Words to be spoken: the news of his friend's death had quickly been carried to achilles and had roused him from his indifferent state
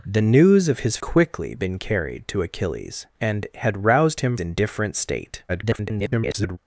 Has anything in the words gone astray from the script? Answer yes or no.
yes